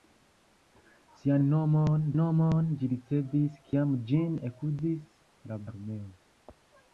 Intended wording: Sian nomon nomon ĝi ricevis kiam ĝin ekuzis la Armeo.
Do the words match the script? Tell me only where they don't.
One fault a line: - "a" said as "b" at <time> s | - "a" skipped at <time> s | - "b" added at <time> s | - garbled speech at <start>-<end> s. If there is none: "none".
none